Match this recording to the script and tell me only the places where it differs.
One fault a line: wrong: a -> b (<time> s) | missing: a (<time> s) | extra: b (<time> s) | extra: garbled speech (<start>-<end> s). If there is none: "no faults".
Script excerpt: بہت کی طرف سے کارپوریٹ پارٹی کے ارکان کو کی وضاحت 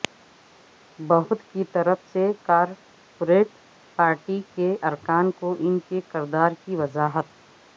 extra: ان کے کردار (5.6 s)